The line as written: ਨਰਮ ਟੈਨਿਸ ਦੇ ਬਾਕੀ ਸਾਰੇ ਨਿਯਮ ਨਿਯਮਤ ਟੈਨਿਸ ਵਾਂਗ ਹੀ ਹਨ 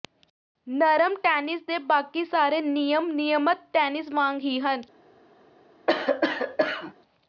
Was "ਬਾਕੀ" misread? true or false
false